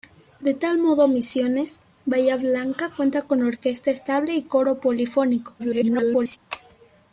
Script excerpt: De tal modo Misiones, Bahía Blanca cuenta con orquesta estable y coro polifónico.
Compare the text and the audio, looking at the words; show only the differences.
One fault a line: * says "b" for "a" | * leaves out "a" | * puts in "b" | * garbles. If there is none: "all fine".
* garbles